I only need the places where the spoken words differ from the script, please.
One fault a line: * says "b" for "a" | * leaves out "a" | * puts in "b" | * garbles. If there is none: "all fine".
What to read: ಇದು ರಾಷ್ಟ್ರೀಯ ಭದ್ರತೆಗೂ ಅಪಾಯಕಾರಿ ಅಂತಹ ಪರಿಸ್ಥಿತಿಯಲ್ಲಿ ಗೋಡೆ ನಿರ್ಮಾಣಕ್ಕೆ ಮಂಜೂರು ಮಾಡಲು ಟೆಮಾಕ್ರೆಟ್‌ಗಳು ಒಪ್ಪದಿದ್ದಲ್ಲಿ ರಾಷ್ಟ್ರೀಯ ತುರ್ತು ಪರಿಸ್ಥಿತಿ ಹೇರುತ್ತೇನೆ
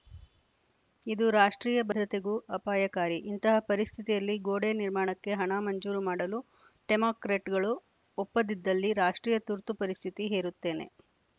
* says "ಇಂತಹ" for "ಅಂತಹ"
* puts in "ಹಣ"